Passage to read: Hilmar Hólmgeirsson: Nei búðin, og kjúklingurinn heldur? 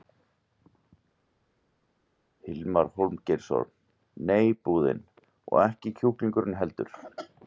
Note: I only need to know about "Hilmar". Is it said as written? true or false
true